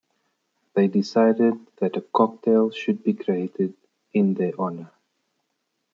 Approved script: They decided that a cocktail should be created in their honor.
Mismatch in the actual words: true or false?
false